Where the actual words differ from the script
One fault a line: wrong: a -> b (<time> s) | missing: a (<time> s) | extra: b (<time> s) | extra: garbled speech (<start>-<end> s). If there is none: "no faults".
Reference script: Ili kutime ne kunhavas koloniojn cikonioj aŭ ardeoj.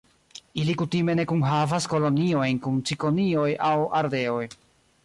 extra: kun (2.7 s)